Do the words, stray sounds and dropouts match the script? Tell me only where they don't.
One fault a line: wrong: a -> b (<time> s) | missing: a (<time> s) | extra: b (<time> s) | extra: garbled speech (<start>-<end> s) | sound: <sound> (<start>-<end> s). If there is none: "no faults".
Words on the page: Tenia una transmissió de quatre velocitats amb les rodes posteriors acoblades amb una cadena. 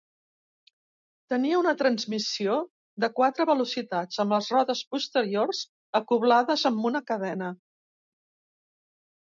no faults